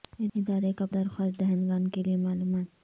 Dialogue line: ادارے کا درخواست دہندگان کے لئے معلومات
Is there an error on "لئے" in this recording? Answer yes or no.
no